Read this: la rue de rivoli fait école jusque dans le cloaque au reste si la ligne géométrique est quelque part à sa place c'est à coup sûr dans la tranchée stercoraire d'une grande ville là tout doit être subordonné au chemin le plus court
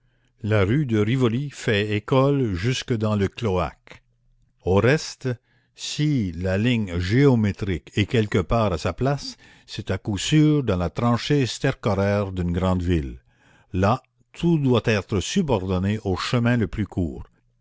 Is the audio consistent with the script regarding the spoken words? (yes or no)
yes